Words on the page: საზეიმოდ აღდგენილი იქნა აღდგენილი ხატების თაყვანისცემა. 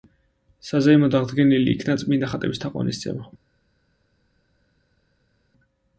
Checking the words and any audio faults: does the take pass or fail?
fail